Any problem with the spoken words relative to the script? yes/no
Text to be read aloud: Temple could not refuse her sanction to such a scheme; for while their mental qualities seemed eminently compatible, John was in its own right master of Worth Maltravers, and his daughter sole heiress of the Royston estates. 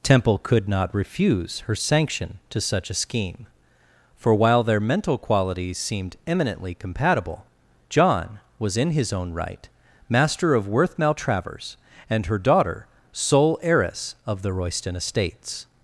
yes